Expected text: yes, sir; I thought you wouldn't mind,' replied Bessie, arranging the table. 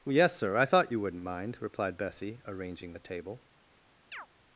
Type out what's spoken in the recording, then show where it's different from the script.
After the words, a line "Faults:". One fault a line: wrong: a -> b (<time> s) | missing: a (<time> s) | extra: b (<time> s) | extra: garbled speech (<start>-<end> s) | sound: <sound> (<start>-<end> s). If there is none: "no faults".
yes, sir; I thought you wouldn't mind,' replied Bessie, arranging the table.
Faults:
sound: chirp (4.1-4.3 s)